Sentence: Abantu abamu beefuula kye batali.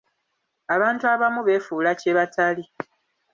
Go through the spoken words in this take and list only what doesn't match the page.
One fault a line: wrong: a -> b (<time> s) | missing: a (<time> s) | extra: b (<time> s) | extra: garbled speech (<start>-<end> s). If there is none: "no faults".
no faults